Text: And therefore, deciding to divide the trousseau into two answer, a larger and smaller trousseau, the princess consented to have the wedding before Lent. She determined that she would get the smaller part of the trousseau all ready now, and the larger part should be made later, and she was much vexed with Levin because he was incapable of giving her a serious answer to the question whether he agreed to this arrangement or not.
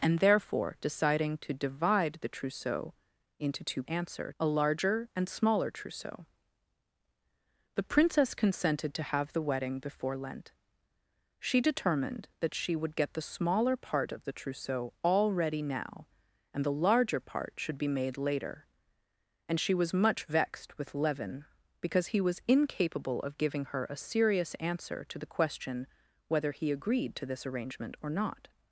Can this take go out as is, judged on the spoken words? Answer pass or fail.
pass